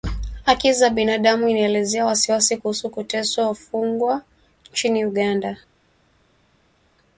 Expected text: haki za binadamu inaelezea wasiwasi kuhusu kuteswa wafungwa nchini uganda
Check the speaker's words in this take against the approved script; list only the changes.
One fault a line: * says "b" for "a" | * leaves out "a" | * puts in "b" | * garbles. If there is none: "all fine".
all fine